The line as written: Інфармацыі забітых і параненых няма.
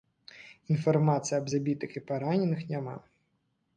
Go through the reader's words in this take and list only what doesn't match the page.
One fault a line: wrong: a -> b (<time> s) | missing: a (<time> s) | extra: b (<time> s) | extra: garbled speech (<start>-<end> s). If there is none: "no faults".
extra: аб (1.4 s)